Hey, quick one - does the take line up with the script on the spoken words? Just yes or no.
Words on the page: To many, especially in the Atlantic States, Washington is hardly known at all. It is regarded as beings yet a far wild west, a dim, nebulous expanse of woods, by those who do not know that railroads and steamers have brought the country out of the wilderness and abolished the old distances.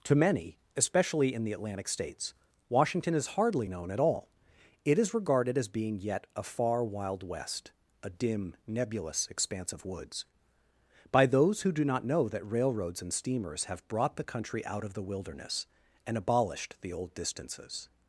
no